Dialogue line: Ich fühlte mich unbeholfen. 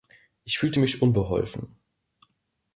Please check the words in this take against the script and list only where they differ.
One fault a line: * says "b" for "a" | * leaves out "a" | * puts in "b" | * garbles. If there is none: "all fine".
all fine